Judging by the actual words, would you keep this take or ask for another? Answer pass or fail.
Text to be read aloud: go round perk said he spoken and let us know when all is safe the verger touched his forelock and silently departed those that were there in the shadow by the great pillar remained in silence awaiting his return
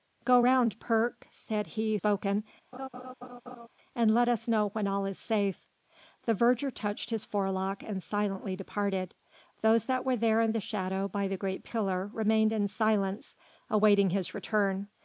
pass